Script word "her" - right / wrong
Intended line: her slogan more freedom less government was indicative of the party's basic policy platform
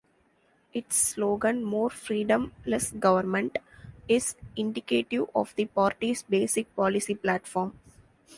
wrong